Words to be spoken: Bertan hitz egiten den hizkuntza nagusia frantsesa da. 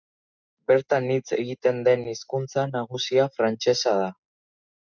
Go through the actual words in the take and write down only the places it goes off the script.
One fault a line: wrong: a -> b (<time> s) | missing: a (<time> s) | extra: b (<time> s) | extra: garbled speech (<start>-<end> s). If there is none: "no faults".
no faults